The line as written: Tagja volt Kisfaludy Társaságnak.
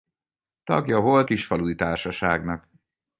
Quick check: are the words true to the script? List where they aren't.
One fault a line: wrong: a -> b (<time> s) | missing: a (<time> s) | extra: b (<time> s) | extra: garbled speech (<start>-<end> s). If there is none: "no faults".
no faults